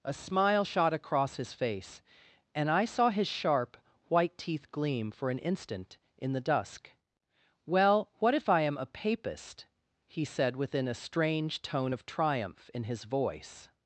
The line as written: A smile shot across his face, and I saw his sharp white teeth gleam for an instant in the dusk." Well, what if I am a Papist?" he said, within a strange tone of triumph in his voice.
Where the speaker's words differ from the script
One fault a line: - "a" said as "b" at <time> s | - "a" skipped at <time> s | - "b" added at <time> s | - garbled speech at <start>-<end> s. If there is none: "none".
none